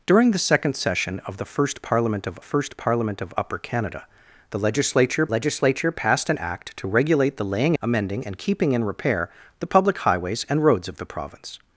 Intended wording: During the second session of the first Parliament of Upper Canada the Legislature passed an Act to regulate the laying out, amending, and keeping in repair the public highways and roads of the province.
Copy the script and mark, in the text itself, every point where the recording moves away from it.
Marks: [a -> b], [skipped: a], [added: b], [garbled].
During the second session of the first Parliament of [added: first Parliament of] Upper Canada the Legislature [added: Legislature] passed an Act to regulate the laying [skipped: out,] amending, and keeping in repair the public highways and roads of the province.